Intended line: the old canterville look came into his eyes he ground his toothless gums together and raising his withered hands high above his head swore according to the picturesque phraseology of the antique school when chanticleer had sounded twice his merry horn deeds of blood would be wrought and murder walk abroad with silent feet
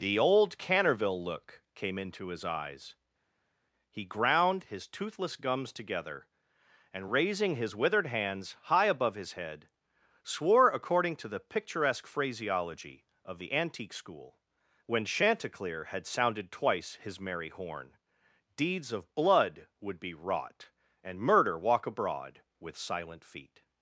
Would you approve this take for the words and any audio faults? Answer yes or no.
yes